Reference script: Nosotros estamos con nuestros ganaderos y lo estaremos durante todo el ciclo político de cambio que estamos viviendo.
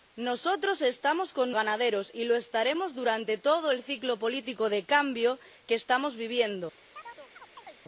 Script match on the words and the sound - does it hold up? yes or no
no